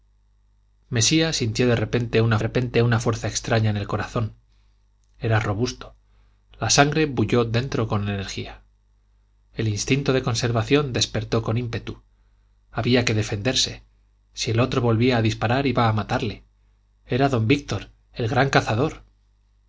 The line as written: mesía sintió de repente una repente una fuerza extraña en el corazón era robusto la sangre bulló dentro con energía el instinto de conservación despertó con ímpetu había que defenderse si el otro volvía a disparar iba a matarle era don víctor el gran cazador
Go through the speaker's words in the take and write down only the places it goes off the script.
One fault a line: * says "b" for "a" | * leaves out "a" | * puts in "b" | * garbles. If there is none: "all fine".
all fine